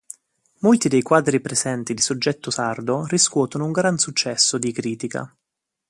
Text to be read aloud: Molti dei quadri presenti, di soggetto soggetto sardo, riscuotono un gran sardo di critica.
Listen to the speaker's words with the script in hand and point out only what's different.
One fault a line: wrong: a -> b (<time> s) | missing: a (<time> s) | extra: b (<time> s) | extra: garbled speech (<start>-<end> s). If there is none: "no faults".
missing: soggetto (2.5 s)
wrong: sardo -> successo (4.0 s)